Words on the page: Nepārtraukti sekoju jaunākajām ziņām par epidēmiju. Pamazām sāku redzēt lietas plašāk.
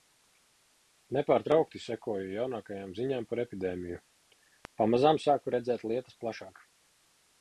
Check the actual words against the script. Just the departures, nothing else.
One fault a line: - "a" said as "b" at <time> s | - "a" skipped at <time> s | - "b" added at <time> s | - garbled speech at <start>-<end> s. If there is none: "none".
none